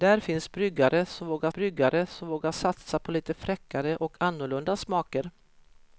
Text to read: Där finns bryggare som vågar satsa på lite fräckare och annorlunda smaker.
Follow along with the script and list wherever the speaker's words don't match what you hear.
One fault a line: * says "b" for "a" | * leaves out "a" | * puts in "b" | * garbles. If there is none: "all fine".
* puts in "bryggare som vågar"